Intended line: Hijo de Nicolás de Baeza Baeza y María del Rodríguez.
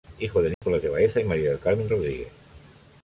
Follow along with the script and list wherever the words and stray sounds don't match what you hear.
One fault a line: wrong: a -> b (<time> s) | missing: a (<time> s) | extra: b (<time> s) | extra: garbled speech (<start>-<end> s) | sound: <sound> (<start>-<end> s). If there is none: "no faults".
sound: dropout (0.5-0.6 s)
missing: Baeza (1.2 s)
extra: Carmen (1.6 s)